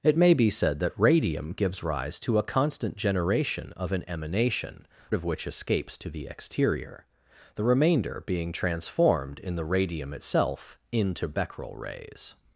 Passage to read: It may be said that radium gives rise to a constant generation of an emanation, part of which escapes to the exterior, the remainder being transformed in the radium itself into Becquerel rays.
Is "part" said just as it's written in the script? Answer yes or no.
no